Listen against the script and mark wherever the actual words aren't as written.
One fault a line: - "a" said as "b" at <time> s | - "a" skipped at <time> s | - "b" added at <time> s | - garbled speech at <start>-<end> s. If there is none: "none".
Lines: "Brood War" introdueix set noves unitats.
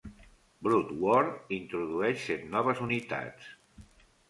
none